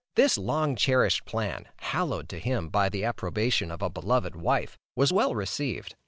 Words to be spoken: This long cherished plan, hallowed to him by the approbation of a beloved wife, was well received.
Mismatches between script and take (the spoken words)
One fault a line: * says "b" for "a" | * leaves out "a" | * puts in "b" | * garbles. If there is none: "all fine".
all fine